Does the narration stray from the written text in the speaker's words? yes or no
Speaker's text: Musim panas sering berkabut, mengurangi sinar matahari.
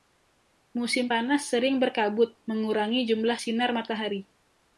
yes